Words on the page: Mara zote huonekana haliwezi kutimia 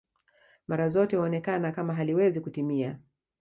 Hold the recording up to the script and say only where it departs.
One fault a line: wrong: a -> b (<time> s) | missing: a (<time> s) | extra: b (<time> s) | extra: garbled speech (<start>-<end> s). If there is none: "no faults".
extra: kama (1.7 s)